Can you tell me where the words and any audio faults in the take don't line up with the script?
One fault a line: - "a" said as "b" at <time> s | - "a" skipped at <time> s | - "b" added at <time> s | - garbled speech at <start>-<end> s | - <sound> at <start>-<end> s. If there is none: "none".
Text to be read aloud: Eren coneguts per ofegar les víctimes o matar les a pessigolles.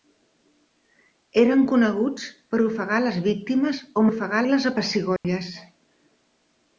- "matar" said as "ofegar" at 4.1 s
- dropout at 5.2-5.2 s